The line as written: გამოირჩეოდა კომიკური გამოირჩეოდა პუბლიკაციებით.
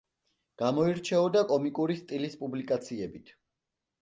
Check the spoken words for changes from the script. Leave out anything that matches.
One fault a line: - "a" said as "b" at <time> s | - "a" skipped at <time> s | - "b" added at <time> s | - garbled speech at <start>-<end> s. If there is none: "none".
- "გამოირჩეოდა" said as "სტილის" at 2.0 s